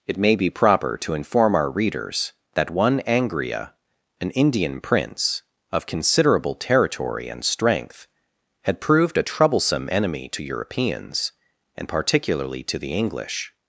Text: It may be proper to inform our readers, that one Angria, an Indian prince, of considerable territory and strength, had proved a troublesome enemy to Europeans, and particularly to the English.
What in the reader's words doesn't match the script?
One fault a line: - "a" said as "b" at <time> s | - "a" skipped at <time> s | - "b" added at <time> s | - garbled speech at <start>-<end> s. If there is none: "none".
none